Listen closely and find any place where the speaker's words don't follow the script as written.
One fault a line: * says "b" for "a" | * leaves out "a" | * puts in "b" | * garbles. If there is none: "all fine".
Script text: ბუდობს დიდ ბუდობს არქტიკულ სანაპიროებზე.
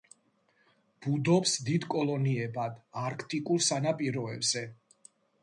* says "კოლონიებად" for "ბუდობს"